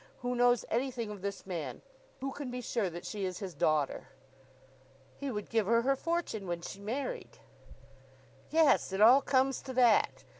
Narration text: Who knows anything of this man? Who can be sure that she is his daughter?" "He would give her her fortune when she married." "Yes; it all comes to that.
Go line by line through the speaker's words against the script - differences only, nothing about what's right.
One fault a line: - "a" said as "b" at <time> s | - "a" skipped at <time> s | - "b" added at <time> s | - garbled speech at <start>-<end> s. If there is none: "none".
none